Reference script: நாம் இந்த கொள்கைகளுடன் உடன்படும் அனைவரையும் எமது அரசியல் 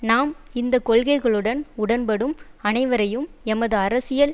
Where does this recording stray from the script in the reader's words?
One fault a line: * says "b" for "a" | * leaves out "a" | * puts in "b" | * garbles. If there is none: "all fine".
all fine